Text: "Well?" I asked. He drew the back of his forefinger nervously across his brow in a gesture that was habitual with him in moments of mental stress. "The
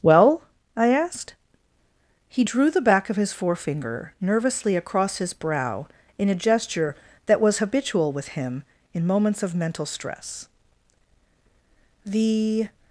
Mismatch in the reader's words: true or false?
false